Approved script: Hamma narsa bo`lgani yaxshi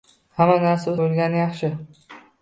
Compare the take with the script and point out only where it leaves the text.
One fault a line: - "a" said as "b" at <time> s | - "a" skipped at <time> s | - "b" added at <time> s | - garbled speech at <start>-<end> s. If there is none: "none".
none